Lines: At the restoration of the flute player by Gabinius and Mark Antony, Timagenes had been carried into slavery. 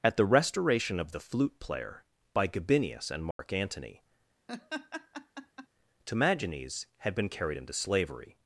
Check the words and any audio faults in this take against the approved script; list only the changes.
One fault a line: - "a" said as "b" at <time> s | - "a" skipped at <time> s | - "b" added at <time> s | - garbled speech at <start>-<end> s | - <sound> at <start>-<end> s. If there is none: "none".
- dropout at 3.3-3.4 s
- laugh at 4.5-5.7 s